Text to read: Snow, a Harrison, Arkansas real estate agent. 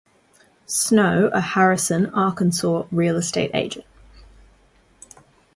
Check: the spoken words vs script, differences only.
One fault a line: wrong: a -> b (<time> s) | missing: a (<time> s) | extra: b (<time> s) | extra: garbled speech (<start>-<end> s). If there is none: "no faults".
no faults